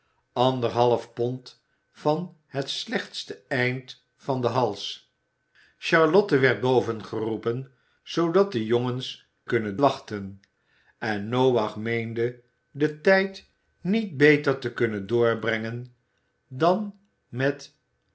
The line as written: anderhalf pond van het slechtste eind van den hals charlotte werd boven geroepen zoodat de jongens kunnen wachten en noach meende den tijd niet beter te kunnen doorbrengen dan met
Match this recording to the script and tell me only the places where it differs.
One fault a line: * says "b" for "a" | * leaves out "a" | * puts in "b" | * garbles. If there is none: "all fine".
all fine